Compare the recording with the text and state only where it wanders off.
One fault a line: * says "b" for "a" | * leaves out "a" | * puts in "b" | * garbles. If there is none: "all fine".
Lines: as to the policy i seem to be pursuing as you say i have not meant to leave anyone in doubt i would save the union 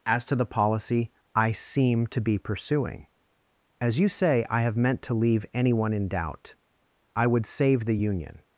* leaves out "not"